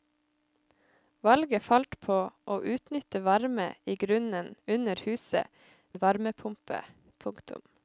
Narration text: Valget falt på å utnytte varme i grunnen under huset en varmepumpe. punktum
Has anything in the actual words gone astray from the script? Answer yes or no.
no